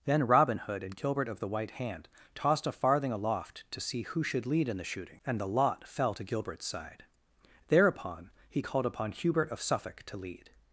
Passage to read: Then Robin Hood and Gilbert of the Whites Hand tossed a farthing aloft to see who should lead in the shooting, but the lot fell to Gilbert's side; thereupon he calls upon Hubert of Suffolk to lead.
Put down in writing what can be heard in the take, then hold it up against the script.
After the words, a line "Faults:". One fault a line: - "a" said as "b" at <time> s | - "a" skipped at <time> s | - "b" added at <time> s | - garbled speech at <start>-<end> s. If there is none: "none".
Then Robin Hood and Gilbert of the White Hand tossed a farthing aloft to see who should lead in the shooting, and the lot fell to Gilbert's side; thereupon he called upon Hubert of Suffolk to lead.
Faults:
- "Whites" said as "White" at 1.5 s
- "but" said as "and" at 5.2 s
- "calls" said as "called" at 8.6 s